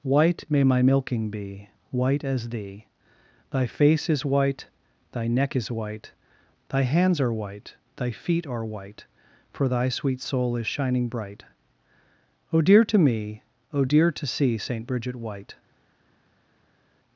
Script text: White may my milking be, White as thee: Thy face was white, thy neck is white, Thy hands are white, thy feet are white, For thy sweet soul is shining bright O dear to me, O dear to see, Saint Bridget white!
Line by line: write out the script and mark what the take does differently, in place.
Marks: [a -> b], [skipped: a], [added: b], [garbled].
White may my milking be, White as thee: Thy face [was -> is] white, thy neck is white, Thy hands are white, thy feet are white, For thy sweet soul is shining bright O dear to me, O dear to see, Saint Bridget white!